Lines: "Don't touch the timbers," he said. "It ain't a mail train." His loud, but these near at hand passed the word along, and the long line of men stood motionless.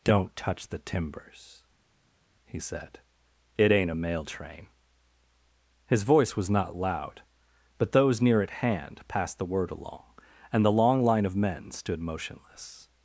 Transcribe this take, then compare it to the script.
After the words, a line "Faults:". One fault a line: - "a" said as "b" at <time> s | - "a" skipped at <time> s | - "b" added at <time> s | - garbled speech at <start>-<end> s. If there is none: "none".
"Don't touch the timbers," he said. "It ain't a mail train." His voice was not loud, but those near at hand passed the word along, and the long line of men stood motionless.
Faults:
- "voice was not" added at 6.0 s
- "these" said as "those" at 7.9 s